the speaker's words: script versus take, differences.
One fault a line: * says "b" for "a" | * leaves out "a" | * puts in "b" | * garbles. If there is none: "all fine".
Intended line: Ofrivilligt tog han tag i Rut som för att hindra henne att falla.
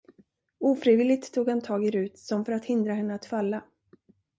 all fine